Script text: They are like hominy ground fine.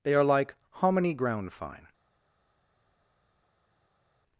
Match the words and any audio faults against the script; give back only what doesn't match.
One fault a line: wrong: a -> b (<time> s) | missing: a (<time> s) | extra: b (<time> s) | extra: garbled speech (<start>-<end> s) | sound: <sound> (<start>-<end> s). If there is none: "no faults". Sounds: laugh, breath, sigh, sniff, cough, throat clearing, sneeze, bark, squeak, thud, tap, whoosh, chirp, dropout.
no faults